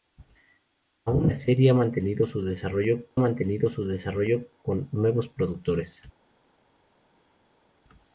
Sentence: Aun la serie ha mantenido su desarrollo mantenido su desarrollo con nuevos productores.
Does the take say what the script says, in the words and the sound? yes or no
yes